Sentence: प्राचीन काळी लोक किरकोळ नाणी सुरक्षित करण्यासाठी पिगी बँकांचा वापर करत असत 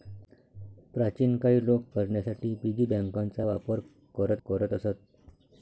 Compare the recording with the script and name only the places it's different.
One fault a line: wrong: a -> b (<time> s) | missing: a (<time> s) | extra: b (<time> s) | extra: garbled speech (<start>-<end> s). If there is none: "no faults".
missing: किरकोळ नाणी सुरक्षित (1.8 s)
extra: करत (4.5 s)